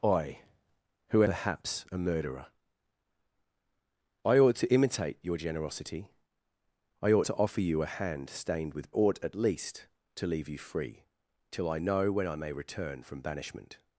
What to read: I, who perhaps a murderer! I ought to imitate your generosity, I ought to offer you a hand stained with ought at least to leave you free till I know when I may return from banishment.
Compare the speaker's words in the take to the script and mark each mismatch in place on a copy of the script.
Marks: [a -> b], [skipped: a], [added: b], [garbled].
I, who perhaps a murderer! I ought to imitate your generosity, I ought to offer you a hand stained with ought at least to leave you free till I know when I may return from banishment.